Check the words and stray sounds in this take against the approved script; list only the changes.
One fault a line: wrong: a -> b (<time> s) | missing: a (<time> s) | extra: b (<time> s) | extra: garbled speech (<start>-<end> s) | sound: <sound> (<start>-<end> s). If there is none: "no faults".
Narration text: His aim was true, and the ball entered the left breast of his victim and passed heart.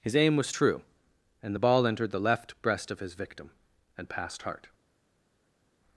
no faults